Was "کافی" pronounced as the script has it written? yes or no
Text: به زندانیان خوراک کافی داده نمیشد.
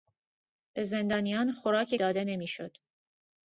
no